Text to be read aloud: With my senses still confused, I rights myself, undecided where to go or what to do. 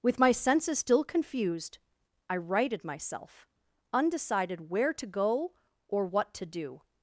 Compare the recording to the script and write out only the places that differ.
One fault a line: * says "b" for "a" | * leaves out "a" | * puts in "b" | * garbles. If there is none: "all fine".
* says "righted" for "rights"